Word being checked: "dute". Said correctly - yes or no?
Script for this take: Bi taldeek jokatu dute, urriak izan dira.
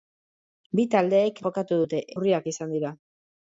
yes